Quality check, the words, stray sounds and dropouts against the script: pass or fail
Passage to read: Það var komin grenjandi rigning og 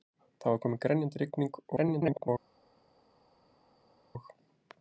fail